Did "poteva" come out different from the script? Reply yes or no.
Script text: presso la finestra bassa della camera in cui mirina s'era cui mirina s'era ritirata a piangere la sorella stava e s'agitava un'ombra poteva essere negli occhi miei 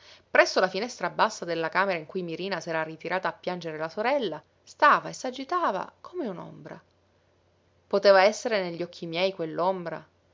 no